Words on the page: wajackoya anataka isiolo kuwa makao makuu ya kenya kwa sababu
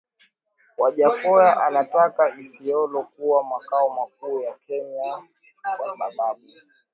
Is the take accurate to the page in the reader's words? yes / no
yes